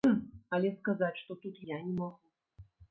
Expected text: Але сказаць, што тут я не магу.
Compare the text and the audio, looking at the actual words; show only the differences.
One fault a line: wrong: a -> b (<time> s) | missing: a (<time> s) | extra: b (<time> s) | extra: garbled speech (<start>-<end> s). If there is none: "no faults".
no faults